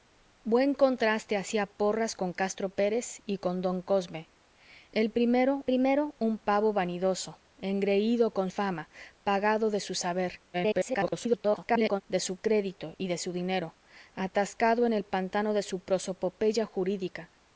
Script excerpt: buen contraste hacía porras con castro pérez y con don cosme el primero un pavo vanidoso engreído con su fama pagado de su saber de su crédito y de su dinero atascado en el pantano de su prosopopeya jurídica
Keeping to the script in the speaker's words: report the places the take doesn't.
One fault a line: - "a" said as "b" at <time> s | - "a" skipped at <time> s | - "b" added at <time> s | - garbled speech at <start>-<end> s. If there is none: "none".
- "primero" added at 5.6 s
- "su" skipped at 8.5 s
- garbled speech at 10.5-12.0 s